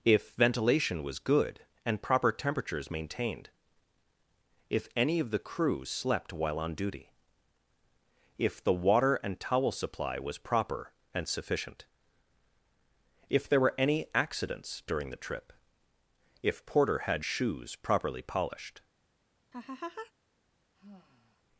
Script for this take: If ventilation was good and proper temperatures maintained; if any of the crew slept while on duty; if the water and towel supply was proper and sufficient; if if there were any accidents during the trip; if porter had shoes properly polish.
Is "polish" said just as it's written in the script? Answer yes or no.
no